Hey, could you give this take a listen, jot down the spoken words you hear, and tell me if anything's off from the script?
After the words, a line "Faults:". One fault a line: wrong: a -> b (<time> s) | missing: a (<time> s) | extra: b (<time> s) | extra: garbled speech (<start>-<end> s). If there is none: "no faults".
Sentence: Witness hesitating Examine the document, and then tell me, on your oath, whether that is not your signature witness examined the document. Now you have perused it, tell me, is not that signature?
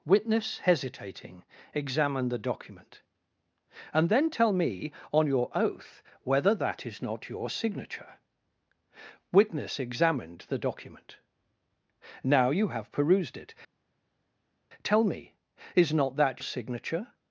Witness hesitating Examine the document, and then tell me, on your oath, whether that is not your signature witness examined the document. Now you have perused it, tell me, is not that signature?
Faults:
no faults